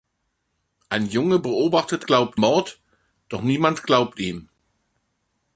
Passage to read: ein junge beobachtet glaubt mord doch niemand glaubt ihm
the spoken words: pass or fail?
pass